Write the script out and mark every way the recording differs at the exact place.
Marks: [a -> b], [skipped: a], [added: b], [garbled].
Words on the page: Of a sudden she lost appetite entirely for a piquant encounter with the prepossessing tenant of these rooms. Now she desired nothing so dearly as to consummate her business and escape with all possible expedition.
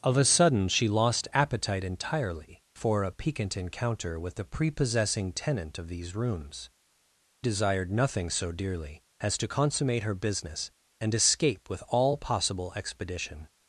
Of a sudden she lost appetite entirely for a piquant encounter with the prepossessing tenant of these rooms. [skipped: Now she] desired nothing so dearly as to consummate her business and escape with all possible expedition.